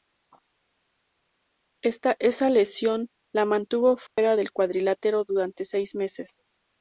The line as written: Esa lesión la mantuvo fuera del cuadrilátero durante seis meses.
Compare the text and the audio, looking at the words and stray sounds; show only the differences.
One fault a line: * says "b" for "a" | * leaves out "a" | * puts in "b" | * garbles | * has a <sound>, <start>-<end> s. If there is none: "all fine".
* has a dropout, 4.1-4.2 s